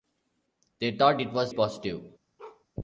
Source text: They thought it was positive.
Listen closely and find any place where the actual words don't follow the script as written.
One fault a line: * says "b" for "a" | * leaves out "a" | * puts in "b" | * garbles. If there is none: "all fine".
all fine